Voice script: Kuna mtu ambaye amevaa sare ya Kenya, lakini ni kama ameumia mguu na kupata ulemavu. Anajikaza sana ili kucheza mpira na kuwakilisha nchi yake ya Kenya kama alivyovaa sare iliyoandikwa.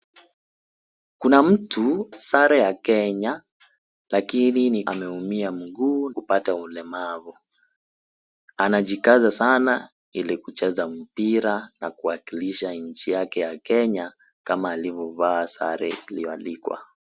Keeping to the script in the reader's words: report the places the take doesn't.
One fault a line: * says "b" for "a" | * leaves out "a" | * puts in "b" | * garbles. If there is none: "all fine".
* leaves out "ambaye amevaa"
* leaves out "kama"
* leaves out "na"